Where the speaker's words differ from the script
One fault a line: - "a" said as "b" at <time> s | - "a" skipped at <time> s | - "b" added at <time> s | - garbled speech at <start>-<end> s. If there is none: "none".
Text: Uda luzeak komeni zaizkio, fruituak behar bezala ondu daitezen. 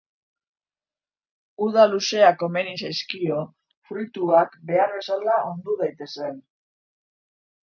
none